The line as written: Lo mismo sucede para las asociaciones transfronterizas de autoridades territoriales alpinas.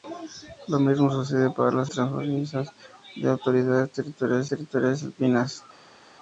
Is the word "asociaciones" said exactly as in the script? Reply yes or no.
no